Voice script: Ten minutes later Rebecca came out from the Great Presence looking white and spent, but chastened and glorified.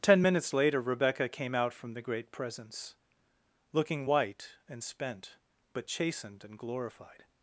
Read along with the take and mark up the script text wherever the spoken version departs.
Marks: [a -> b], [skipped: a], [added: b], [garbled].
Ten minutes later Rebecca came out from the Great Presence looking white and spent, but chastened and glorified.